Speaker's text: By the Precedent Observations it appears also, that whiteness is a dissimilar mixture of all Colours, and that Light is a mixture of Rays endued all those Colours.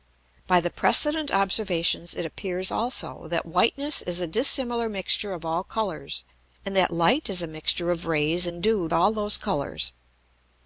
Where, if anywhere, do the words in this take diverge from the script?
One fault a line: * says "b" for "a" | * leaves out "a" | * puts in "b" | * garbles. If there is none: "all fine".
all fine